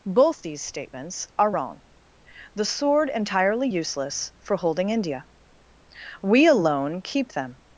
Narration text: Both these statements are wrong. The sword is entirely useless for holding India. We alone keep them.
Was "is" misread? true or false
true